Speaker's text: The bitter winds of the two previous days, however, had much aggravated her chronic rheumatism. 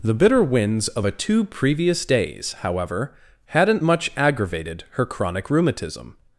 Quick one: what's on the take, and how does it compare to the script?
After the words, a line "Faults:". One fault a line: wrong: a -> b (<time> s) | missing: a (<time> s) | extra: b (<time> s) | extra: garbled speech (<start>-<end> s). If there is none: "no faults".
The bitter winds of a two previous days, however, hadn't much aggravated her chronic rheumatism.
Faults:
wrong: the -> a (1.0 s)
wrong: had -> hadn't (3.5 s)